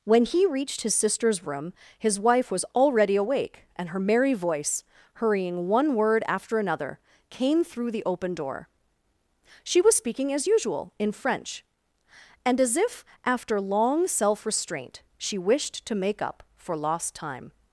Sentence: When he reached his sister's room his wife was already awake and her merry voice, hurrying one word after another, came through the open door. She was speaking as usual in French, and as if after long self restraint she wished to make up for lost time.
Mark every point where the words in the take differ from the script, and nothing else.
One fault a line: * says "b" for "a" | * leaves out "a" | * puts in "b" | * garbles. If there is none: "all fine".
all fine